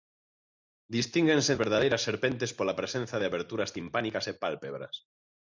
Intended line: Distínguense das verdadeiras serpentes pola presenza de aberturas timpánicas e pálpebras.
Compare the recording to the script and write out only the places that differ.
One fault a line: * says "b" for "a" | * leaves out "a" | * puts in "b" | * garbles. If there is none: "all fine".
* leaves out "das"